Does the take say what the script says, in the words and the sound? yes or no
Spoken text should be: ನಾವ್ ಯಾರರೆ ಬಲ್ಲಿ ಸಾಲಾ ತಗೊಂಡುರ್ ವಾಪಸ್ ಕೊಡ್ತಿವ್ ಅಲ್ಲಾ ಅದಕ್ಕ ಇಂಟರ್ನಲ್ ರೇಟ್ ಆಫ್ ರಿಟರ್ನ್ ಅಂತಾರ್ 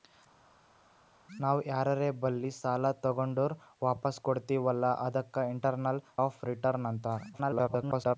no